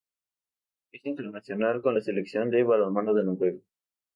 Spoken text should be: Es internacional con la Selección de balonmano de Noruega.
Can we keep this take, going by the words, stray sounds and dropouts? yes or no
yes